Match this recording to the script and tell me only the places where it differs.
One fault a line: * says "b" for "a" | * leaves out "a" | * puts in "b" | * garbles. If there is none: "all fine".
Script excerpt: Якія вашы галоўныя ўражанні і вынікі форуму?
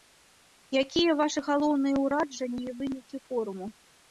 all fine